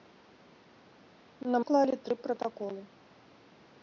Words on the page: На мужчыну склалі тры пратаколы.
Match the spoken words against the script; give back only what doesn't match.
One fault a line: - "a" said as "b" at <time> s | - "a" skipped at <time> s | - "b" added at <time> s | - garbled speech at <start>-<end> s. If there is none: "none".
- "мужчыну" skipped at 1.6 s